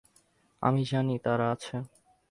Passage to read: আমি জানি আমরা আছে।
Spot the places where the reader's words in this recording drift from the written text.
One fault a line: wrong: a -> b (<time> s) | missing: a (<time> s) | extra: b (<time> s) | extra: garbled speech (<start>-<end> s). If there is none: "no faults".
wrong: আমরা -> তারা (1.2 s)